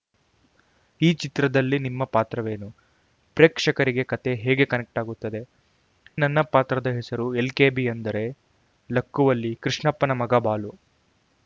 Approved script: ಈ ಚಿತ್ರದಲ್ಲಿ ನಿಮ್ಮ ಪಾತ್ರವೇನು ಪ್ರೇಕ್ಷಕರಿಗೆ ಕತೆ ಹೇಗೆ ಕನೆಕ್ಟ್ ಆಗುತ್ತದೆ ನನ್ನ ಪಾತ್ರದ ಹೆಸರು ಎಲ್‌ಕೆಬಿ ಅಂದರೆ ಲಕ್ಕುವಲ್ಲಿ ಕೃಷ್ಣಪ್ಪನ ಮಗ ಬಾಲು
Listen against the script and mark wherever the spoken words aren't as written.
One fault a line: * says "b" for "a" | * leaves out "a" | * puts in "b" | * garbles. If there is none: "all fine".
all fine